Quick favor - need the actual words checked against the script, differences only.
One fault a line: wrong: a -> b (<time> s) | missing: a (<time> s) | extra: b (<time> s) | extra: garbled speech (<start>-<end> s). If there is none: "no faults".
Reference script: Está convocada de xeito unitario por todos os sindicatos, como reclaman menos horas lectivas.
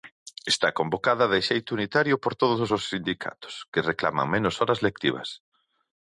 wrong: como -> que (3.7 s)